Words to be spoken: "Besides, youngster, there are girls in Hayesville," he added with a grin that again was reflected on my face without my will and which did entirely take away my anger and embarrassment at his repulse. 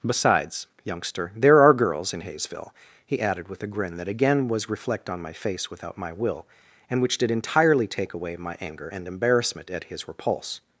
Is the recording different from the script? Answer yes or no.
yes